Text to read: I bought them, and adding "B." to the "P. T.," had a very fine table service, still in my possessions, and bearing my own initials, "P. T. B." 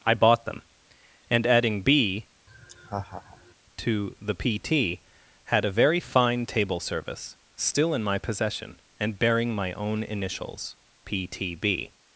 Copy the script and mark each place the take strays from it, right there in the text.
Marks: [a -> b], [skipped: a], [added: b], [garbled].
I bought them, and adding "B." to the "P. T.," had a very fine table service, still in my [possessions, -> possession] and bearing my own initials, "P. T. B."